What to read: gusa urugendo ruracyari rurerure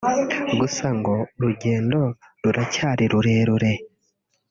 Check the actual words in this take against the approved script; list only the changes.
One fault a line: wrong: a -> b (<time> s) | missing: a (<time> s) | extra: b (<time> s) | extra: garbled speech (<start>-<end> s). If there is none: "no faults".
extra: ngo (1.0 s)